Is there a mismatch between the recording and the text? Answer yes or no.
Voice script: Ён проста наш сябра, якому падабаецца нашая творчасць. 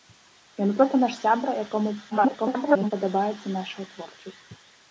yes